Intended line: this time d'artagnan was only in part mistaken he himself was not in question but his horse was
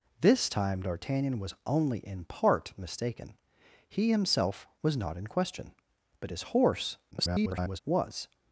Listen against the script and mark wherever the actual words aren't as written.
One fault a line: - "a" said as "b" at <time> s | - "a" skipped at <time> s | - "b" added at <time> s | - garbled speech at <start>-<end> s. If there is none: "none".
- garbled speech at 7.1-7.8 s